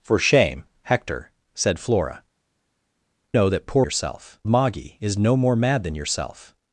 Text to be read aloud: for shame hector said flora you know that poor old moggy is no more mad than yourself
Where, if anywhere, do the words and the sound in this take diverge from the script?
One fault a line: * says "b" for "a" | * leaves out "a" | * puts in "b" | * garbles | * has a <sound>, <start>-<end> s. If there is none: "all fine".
* leaves out "you"
* says "yourself" for "old"